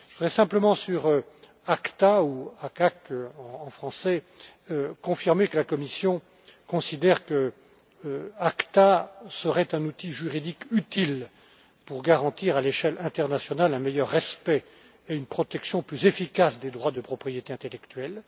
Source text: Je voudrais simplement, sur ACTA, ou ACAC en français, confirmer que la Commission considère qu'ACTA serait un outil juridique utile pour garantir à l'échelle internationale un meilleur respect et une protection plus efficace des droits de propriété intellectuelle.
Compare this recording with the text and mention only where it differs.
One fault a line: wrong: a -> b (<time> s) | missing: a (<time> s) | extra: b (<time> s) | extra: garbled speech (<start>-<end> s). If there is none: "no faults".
no faults